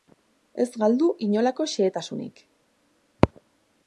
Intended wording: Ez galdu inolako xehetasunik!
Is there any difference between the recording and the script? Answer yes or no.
no